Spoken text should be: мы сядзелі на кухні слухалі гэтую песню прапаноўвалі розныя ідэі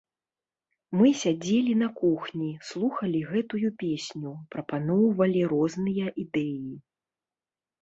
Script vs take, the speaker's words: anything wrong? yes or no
no